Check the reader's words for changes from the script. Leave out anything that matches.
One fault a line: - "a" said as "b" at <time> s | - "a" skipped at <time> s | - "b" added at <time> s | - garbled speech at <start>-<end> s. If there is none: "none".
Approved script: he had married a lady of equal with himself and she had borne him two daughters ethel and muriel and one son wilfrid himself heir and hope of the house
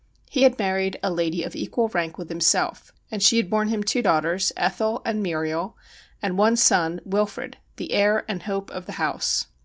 - "rank" added at 1.9 s
- "himself" said as "the" at 7.8 s